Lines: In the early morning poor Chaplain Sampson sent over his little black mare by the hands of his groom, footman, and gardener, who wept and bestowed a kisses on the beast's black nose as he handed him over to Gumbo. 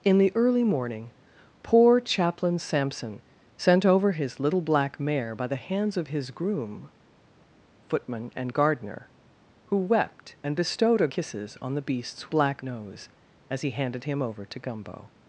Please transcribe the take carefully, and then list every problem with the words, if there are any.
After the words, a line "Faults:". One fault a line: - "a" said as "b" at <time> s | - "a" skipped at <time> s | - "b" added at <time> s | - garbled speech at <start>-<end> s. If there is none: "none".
In the early morning poor Chaplain Sampson sent over his little black mare by the hands of his groom, footman, and gardener, who wept and bestowed a kisses on the beast's black nose as he handed him over to Gumbo.
Faults:
none